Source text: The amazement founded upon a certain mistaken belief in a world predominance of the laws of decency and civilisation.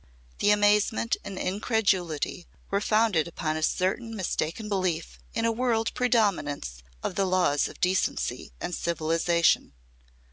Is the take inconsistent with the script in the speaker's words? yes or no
yes